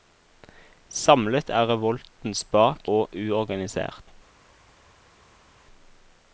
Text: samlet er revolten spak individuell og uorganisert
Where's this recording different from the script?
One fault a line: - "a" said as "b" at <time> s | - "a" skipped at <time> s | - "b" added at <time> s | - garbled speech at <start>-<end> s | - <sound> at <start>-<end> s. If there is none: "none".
- "individuell" skipped at 2.9 s